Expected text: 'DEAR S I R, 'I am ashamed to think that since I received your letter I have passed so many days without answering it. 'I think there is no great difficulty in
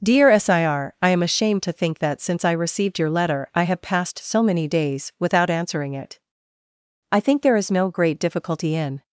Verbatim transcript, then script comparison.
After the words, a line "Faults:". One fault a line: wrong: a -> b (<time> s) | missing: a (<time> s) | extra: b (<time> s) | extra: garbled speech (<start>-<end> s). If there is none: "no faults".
'DEAR S I R, 'I am ashamed to think that since I received your letter I have passed so many days without answering it. 'I think there is no great difficulty in
Faults:
no faults